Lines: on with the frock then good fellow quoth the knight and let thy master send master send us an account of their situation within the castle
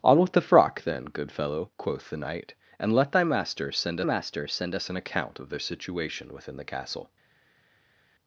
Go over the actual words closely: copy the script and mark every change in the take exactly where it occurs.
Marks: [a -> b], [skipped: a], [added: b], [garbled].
on with the frock then good fellow quoth the knight and let thy master send master send us an account of their situation within the castle